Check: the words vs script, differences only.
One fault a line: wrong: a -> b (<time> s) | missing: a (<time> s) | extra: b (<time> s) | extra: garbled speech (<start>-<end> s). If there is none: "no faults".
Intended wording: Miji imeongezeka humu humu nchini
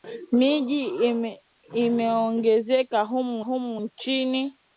no faults